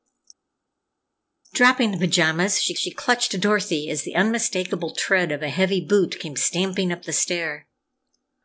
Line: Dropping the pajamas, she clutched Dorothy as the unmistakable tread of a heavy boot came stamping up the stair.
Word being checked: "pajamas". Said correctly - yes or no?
yes